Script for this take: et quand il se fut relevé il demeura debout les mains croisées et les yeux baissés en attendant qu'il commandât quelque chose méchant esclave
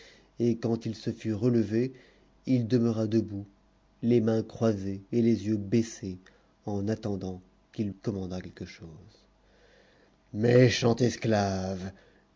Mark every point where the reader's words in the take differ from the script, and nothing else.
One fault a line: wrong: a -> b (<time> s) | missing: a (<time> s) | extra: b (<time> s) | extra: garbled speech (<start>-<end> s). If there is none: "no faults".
no faults